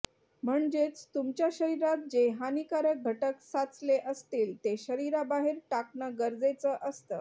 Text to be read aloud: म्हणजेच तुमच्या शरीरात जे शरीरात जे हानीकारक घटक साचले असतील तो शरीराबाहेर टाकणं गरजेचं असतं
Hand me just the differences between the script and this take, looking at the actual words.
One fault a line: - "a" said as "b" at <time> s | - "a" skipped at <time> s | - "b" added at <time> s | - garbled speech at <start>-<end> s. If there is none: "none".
- "शरीरात जे" skipped at 2.3 s
- "तो" said as "ते" at 4.6 s